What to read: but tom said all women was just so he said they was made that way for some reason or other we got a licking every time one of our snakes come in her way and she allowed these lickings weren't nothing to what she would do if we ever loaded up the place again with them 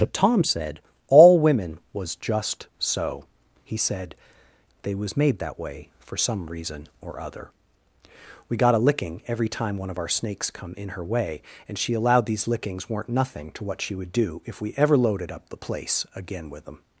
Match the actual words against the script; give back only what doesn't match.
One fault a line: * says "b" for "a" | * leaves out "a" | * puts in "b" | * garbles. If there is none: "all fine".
all fine